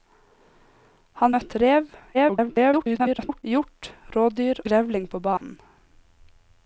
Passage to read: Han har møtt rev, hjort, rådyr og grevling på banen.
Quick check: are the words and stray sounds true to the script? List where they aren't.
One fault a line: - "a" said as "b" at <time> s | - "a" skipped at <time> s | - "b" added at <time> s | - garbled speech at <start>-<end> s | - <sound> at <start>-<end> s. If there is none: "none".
- "har" skipped at 1.4 s
- garbled speech at 2.1-3.4 s
- "og" skipped at 4.6 s
- dropout at 5.4-5.4 s